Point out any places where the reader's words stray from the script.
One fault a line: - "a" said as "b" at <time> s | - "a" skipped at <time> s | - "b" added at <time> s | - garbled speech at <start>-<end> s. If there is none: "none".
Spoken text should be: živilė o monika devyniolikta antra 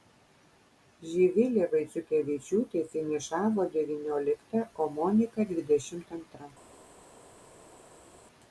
- "vaiciukevičiūtė finišavo devyniolikta" added at 1.7 s
- "devyniolikta" said as "dvidešimt" at 5.5 s